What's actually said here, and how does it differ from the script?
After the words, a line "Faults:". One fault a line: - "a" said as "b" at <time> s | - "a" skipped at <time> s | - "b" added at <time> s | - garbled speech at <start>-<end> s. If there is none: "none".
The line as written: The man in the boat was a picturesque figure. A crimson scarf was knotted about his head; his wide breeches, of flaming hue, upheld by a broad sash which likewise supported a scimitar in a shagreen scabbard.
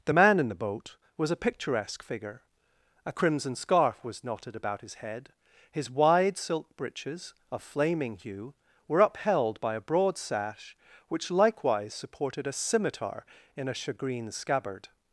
The man in the boat was a picturesque figure. A crimson scarf was knotted about his head; his wide silk breeches, of flaming hue, were upheld by a broad sash which likewise supported a scimitar in a shagreen scabbard.
Faults:
- "silk" added at 6.4 s
- "were" added at 8.9 s